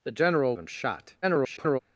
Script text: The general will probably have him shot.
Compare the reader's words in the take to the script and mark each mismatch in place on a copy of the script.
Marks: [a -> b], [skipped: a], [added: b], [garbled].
The general [skipped: will probably have] him shot. [garbled]